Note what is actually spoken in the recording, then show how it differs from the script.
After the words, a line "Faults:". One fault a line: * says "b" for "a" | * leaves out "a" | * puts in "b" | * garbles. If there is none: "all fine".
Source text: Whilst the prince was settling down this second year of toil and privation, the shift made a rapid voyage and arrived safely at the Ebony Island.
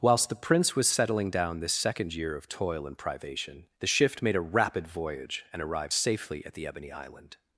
Whilst the prince was settling down this second year of toil and privation, the shift made a rapid voyage and arrived safely at the Ebony Island.
Faults:
all fine